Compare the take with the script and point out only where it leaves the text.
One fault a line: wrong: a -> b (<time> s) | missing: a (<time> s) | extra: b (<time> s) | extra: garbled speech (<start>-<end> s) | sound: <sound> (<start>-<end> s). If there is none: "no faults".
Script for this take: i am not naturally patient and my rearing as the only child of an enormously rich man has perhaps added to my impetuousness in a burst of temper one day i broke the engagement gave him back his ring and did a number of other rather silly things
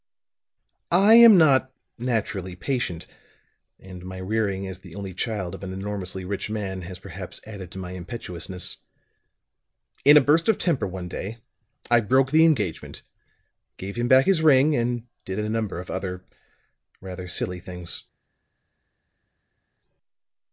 no faults